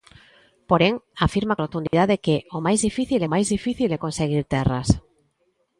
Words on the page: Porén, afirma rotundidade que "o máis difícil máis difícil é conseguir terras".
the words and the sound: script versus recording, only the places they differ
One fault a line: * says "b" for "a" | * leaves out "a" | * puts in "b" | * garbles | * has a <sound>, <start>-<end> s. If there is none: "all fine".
* has a dropout, 1.9-1.9 s